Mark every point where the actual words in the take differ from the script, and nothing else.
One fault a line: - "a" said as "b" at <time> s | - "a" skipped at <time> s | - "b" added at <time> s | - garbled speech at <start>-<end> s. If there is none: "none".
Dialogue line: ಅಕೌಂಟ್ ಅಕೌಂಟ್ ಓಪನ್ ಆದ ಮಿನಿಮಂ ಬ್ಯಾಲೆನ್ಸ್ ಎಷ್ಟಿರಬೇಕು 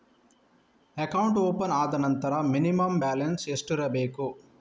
- "ಅಕೌಂಟ್" skipped at 1.4 s
- "ನಂತರ" added at 1.9 s